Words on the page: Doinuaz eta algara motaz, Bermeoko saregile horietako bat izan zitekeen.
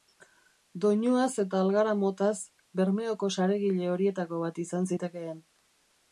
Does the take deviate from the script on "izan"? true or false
false